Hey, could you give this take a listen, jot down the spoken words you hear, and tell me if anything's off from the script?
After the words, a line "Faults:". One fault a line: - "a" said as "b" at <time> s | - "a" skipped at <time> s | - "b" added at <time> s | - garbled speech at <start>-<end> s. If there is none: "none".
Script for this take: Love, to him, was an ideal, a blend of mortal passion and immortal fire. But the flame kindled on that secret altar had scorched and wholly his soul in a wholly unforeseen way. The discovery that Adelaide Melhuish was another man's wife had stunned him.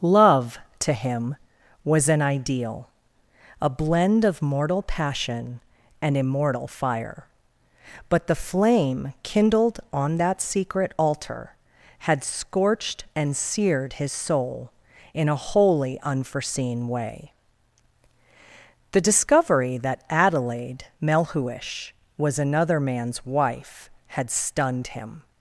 Love, to him, was an ideal, a blend of mortal passion and immortal fire. But the flame kindled on that secret altar had scorched and seared his soul in a wholly unforeseen way. The discovery that Adelaide Melhuish was another man's wife had stunned him.
Faults:
- "wholly" said as "seared" at 13.4 s